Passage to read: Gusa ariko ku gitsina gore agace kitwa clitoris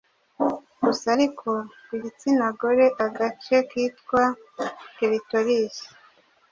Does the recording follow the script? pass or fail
pass